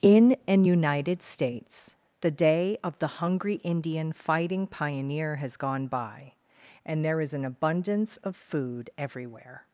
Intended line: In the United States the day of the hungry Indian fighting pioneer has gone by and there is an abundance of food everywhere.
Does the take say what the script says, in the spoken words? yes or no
no